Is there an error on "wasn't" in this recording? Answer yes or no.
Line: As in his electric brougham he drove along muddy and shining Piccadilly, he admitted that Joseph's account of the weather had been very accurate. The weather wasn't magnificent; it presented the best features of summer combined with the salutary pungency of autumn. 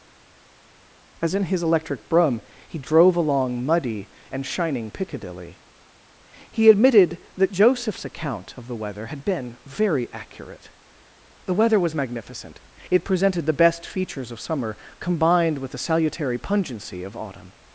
yes